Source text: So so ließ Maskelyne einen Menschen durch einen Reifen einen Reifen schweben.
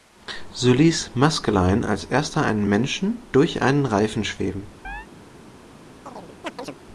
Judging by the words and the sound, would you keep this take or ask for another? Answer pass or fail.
fail